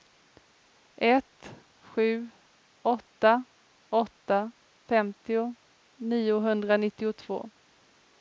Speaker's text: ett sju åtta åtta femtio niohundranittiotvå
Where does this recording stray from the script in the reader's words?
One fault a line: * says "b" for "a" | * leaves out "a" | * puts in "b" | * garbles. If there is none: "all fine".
all fine